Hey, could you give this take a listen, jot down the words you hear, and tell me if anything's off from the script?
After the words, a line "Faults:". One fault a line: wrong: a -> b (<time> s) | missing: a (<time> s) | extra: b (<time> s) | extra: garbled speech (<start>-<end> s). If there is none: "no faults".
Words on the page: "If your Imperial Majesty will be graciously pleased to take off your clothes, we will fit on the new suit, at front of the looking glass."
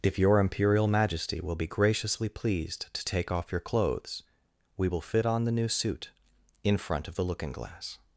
"If your Imperial Majesty will be graciously pleased to take off your clothes, we will fit on the new suit, in front of the looking glass."
Faults:
wrong: at -> in (6.6 s)